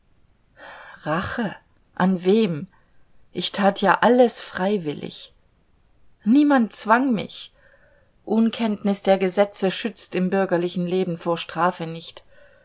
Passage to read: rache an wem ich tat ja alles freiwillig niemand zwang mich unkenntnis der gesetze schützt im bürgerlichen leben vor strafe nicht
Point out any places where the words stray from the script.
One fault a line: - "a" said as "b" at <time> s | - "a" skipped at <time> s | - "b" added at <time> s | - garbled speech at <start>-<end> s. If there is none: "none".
none